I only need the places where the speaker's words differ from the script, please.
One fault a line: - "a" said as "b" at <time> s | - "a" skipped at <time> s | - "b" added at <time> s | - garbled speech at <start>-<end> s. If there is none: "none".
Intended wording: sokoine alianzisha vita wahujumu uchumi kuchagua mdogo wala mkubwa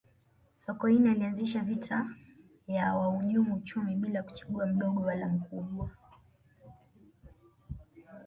- "ya" added at 2.7 s
- "bila" added at 4.0 s